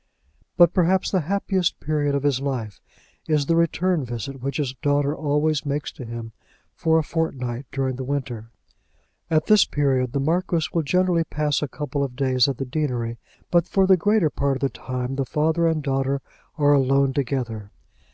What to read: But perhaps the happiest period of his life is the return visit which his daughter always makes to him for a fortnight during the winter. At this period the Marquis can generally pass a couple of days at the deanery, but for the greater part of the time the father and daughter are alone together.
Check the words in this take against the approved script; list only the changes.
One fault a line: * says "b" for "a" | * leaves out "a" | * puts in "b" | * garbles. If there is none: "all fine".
* says "will" for "can"